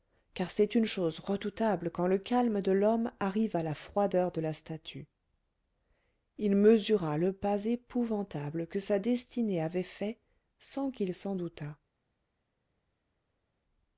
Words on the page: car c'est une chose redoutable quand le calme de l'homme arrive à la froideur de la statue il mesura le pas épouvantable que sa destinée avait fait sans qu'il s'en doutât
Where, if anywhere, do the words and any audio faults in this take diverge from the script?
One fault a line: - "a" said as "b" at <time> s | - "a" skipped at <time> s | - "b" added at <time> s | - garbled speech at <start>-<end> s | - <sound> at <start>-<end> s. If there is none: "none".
none